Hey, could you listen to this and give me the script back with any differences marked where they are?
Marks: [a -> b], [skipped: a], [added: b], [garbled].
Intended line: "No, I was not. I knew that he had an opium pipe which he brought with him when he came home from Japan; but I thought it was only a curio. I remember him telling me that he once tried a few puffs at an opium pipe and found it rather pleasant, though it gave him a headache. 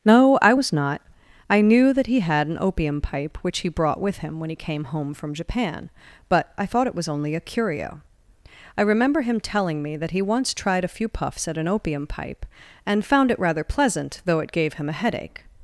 "No, I was not. I knew that he had an opium pipe which he brought with him when he came home from Japan; but I thought it was only a curio. I remember him telling me that he once tried a few puffs at an opium pipe and found it rather pleasant, though it gave him a headache.